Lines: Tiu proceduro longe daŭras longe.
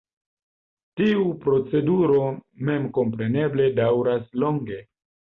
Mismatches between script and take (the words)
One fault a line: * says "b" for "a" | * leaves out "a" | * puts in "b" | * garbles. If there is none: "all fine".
* says "memkompreneble" for "longe"